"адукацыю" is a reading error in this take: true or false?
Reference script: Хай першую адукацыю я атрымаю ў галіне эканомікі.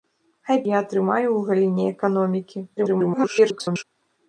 true